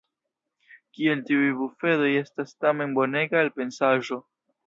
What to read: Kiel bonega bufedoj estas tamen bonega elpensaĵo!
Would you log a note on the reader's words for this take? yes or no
yes